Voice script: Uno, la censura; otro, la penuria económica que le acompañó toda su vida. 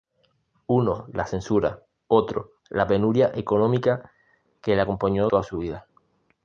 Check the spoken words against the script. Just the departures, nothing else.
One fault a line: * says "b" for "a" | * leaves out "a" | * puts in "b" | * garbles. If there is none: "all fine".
all fine